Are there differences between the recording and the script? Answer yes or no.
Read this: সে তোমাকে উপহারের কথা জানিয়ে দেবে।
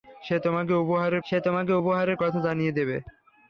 yes